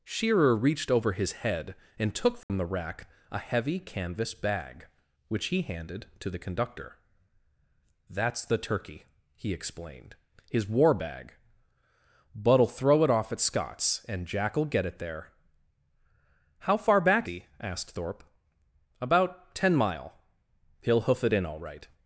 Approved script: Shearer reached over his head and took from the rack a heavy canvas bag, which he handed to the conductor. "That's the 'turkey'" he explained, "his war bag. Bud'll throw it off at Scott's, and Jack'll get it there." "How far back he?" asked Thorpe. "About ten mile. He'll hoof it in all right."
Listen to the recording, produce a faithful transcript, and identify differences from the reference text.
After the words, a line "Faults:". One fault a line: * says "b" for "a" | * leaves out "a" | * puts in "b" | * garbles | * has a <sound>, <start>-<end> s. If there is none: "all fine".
Shearer reached over his head and took from the rack a heavy canvas bag, which he handed to the conductor. "That's the 'turkey'" he explained, "his war bag. Bud'll throw it off at Scott's, and Jack'll get it there." "How far back he?" asked Thorpe. "About ten mile. He'll hoof it in all right."
Faults:
* has a dropout, 2.4-2.5 s